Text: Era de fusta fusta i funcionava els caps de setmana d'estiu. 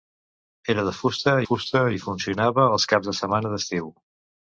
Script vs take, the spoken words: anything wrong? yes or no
no